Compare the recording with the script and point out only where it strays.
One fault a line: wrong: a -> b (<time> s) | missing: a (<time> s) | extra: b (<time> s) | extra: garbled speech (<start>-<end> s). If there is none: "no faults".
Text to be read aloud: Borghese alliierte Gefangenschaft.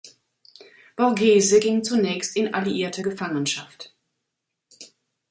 extra: ging zunächst in (1.6 s)